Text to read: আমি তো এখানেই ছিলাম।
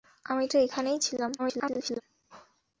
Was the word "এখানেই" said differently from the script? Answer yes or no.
no